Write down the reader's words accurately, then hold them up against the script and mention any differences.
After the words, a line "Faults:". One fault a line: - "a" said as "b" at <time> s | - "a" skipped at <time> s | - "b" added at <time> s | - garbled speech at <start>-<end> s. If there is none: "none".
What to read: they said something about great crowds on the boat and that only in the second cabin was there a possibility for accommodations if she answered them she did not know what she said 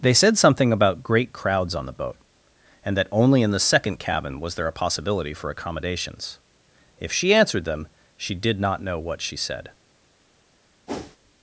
they said something about great crowds on the boat and that only in the second cabin was there a possibility for accommodations if she answered them she did not know what she said
Faults:
none